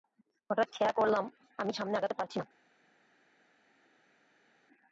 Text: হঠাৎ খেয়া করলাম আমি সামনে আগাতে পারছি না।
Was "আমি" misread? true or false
false